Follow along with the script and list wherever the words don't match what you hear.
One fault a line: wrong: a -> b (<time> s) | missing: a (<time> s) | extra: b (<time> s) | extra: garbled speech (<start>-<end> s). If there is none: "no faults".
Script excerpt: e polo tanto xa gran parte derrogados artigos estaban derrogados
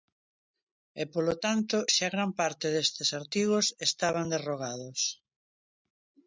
wrong: derrogados -> destes (2.8 s)